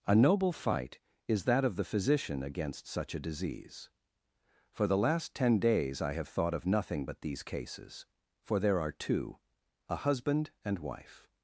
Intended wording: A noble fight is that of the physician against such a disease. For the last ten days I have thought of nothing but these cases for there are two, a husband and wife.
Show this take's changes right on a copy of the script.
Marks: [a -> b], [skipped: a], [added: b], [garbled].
A noble fight is that of the physician against such a disease. For the last ten days I have thought of nothing but these cases for there are two, a husband and wife.